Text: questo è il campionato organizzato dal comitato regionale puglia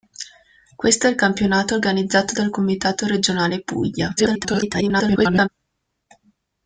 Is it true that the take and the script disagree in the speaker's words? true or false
true